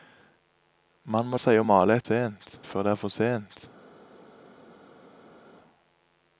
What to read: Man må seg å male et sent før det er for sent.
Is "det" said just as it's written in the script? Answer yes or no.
yes